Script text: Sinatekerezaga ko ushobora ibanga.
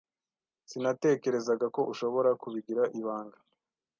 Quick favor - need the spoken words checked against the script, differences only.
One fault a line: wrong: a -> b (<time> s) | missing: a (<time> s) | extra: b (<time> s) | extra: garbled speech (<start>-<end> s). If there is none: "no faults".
extra: kubigira (2.4 s)